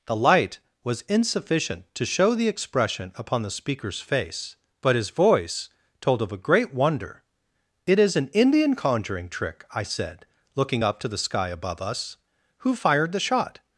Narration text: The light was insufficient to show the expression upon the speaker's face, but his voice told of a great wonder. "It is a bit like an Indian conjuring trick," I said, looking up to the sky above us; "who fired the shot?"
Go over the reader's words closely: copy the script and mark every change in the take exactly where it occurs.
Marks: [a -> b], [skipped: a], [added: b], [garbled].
The light was insufficient to show the expression upon the speaker's face, but his voice told of a great wonder. "It is [skipped: a bit like] an Indian conjuring trick," I said, looking up to the sky above us; "who fired the shot?"